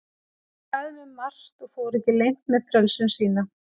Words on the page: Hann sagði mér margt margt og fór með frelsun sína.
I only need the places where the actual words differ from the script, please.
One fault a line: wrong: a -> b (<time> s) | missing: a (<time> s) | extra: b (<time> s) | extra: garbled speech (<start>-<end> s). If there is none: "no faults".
missing: margt (1.7 s)
extra: ekki leynt (2.0 s)